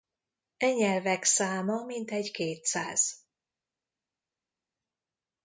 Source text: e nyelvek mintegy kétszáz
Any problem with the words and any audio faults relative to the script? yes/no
yes